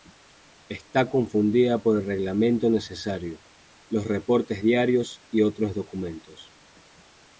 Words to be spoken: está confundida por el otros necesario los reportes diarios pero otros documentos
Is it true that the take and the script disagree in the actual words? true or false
true